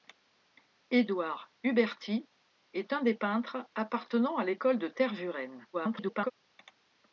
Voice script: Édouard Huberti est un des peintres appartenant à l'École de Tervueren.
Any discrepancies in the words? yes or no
yes